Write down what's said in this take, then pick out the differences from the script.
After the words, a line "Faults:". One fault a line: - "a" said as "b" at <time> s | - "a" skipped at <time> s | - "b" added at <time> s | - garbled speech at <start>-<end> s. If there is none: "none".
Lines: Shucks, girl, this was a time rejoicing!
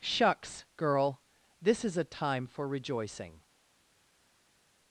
Shucks, girl, this is a time for rejoicing!
Faults:
- "was" said as "is" at 1.8 s
- "for" added at 2.5 s